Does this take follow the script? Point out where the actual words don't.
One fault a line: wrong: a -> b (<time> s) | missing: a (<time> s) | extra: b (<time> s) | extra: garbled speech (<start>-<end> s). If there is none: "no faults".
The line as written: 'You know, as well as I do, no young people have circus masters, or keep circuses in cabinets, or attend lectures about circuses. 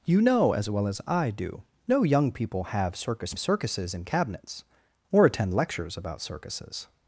missing: masters or keep (3.4 s)